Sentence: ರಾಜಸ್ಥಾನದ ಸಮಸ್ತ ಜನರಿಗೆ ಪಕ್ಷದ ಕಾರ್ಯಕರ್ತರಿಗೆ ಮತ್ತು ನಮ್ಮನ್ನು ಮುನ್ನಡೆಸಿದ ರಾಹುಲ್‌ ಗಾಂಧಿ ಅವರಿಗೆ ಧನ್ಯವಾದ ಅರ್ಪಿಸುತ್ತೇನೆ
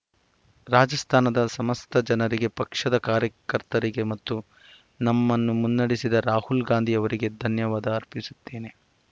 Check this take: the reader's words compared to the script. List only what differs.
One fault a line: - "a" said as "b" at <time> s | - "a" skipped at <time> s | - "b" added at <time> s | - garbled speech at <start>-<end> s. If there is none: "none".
none